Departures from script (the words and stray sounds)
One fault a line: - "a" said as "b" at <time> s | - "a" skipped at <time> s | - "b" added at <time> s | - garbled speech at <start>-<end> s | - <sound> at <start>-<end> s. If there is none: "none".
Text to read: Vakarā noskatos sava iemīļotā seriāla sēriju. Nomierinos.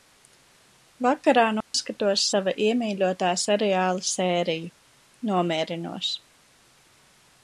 - dropout at 1.6-1.7 s